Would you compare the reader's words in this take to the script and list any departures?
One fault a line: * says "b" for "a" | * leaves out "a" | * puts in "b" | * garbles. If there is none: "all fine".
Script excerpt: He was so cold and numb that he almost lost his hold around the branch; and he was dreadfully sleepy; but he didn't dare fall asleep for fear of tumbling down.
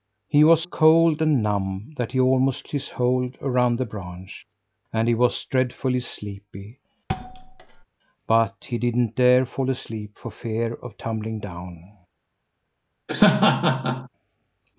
* leaves out "so"
* leaves out "lost"